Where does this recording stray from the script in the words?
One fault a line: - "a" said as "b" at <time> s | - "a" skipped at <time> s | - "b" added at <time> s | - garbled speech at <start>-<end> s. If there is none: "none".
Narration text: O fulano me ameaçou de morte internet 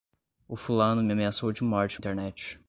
none